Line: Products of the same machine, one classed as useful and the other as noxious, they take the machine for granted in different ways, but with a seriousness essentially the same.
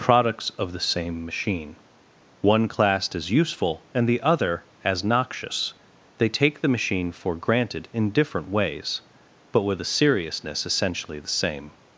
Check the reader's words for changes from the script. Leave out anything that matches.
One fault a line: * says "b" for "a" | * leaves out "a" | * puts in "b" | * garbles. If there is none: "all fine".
all fine